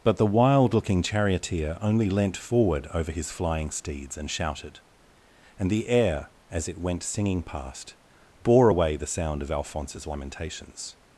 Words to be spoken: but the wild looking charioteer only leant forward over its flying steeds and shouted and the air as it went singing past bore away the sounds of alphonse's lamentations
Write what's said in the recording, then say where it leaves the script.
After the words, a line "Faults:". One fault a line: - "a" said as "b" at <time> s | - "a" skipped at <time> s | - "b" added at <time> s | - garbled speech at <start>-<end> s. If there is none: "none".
but the wild looking charioteer only leant forward over his flying steeds and shouted and the air as it went singing past bore away the sound of alphonse's lamentations
Faults:
- "its" said as "his" at 3.1 s
- "sounds" said as "sound" at 9.1 s